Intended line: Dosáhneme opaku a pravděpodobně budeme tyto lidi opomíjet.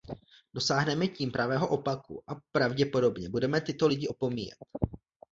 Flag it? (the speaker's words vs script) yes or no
yes